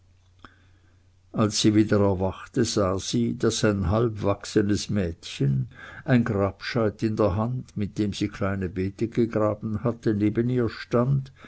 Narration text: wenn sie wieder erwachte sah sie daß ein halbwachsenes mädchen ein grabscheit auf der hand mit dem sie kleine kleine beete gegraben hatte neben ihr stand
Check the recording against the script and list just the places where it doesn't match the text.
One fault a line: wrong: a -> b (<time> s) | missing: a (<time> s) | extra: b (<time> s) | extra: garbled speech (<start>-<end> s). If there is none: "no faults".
wrong: wenn -> als (1.3 s)
wrong: auf -> in (7.0 s)
missing: kleine (8.7 s)